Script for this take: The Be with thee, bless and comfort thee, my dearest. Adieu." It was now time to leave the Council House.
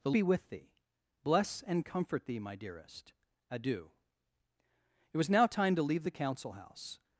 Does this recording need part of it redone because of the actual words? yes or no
no